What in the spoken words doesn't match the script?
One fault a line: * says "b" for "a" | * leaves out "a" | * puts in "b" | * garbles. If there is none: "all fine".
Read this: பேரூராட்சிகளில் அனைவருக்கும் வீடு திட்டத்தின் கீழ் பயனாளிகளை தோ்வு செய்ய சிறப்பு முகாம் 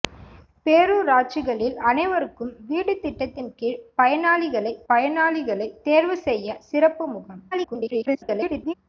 * puts in "பயனாளிகளை"
* garbles